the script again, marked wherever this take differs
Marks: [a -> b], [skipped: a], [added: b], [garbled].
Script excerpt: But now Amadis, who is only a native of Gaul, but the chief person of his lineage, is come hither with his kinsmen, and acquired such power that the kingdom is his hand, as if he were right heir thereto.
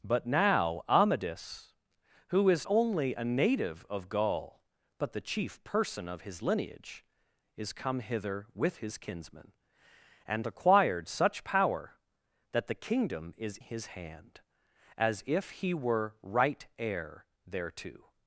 But now Amadis, who is only a native of Gaul, but the chief person of his lineage, is come hither with his kinsmen, and acquired such power that the kingdom is his hand, as if he were right heir thereto.